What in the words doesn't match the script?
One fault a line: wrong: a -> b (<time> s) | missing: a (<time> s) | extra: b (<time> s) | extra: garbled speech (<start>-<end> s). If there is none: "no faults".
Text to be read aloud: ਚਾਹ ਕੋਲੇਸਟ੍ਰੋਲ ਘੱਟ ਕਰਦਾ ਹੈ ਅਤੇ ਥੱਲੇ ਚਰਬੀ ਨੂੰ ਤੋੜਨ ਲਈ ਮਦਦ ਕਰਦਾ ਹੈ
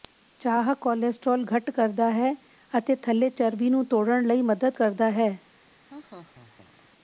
no faults